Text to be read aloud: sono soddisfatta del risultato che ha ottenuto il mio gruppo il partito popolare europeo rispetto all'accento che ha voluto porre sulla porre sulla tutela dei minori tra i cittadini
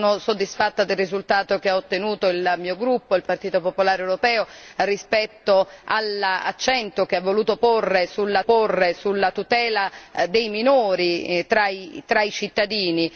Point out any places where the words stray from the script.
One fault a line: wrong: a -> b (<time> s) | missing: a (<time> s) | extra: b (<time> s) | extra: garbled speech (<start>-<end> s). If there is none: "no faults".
no faults